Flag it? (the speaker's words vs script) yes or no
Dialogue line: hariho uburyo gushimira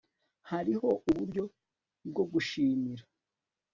yes